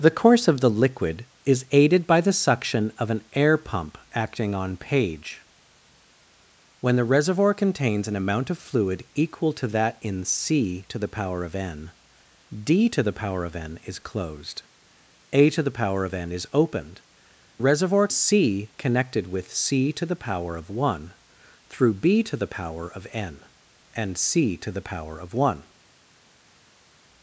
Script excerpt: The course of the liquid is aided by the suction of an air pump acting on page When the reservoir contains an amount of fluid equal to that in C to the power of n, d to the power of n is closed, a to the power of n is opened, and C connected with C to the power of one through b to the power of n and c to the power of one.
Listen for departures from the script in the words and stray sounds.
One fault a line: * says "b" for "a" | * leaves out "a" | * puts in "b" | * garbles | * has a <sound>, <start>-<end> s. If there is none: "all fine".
* says "reservoir" for "and"